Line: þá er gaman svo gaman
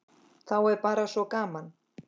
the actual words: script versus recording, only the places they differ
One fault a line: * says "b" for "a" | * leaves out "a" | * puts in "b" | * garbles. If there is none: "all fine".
* says "bara" for "gaman"